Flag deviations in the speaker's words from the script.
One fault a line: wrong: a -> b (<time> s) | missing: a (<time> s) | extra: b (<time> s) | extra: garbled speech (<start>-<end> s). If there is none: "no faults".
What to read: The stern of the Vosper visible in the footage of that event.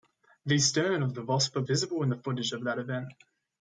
no faults